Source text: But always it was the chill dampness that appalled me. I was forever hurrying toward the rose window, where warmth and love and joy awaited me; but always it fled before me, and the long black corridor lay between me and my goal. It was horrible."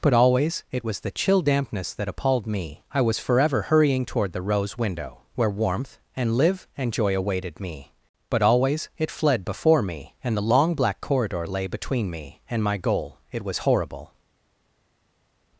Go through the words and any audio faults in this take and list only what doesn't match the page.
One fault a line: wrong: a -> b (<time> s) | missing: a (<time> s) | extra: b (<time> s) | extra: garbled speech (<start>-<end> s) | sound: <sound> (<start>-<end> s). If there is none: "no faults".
wrong: love -> live (6.4 s)